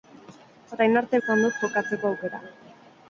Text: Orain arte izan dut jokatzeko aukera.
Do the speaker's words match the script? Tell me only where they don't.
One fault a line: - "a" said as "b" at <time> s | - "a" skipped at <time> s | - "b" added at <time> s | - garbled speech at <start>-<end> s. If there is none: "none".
none